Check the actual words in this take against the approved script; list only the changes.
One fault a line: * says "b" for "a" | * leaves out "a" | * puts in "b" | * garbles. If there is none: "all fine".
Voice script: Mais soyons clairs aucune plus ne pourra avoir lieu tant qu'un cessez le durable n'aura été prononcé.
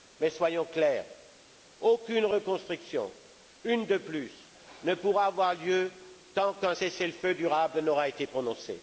* puts in "reconstruction une de"
* puts in "feu"